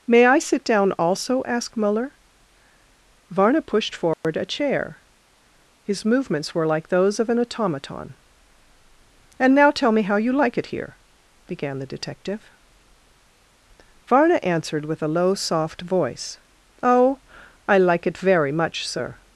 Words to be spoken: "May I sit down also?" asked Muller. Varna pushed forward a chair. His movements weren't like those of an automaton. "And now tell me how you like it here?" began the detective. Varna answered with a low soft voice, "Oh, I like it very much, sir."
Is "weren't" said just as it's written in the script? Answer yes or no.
no